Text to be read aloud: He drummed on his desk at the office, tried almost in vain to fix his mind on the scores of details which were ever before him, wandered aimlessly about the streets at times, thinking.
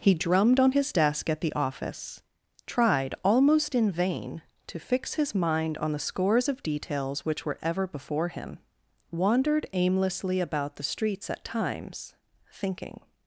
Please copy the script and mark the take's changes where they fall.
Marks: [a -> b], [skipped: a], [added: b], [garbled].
He drummed on his desk at the office, tried almost in vain to fix his mind on the scores of details which were ever before him, wandered aimlessly about the streets at times, thinking.